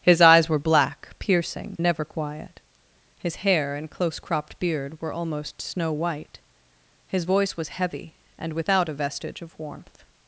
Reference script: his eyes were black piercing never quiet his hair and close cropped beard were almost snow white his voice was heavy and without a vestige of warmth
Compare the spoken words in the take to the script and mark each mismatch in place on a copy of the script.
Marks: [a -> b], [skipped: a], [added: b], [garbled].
his eyes were black piercing never quiet his hair and close cropped beard were almost snow white his voice was heavy and without a vestige of warmth